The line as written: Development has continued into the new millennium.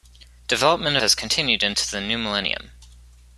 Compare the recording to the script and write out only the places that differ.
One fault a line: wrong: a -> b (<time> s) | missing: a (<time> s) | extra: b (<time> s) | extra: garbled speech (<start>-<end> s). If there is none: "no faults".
no faults